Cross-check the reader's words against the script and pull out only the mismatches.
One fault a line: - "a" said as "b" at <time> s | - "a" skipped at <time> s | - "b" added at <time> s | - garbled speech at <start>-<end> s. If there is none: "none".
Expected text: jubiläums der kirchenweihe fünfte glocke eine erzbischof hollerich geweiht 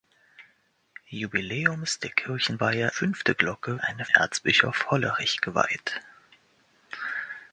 none